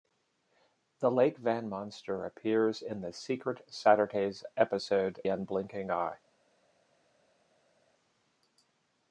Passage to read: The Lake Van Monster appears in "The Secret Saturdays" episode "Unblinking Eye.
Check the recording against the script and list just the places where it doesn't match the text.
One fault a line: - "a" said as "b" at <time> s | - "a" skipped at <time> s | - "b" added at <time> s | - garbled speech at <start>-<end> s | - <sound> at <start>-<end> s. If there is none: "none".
none